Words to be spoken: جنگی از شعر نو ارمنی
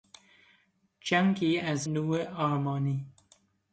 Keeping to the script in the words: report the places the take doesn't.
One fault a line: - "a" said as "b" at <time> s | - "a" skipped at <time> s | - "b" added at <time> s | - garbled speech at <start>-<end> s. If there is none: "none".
- "شعر" skipped at 1.9 s